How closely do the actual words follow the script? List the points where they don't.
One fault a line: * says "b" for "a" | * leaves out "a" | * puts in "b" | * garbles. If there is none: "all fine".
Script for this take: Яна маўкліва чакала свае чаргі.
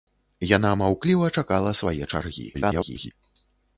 * garbles